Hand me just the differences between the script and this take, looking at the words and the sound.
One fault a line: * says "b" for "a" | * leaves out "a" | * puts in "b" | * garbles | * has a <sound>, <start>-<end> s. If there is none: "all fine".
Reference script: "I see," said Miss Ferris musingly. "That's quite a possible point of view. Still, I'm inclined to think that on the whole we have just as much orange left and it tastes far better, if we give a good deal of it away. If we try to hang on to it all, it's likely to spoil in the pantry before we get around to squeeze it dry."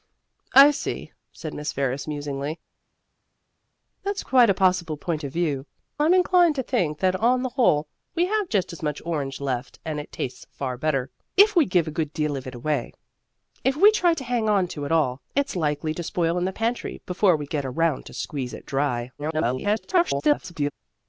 * leaves out "Still"
* garbles